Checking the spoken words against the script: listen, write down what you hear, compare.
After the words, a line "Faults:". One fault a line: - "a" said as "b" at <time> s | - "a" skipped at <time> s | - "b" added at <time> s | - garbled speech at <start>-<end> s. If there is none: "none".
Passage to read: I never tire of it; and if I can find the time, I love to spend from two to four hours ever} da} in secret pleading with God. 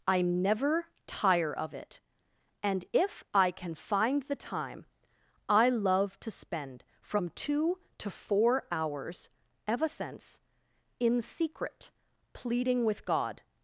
I never tire of it; and if I can find the time, I love to spend from two to four hours ever} since} in secret pleading with God.
Faults:
- "da" said as "since" at 9.9 s